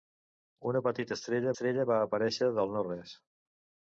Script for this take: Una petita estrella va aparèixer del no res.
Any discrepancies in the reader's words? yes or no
yes